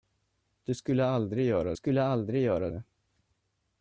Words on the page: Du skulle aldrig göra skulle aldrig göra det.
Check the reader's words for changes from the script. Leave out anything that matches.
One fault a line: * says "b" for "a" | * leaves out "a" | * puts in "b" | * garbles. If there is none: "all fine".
all fine